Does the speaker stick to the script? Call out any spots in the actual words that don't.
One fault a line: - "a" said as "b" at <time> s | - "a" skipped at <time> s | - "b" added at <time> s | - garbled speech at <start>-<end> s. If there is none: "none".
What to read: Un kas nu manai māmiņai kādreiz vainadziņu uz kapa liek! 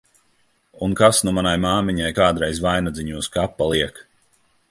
none